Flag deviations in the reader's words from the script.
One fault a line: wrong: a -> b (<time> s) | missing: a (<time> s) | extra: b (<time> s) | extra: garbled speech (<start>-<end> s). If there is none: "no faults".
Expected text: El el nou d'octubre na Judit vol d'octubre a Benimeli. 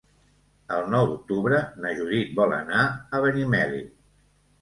missing: el (0.9 s)
wrong: d'octubre -> anar (2.6 s)